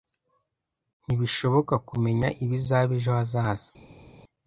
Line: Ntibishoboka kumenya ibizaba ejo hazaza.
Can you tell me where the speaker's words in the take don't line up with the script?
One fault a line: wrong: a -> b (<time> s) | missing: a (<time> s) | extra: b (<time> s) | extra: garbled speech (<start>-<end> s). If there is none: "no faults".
no faults